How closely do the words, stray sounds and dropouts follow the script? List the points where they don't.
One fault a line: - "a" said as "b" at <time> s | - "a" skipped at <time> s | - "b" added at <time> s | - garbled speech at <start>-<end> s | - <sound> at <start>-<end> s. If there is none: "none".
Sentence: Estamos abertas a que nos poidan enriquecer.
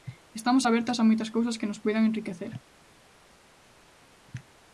- "moitas cousas" added at 1.1 s